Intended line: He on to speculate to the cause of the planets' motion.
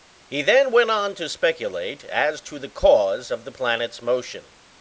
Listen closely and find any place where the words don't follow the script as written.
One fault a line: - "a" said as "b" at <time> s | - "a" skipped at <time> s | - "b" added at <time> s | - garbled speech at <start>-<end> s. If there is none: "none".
- "then went" added at 0.4 s
- "as" added at 2.0 s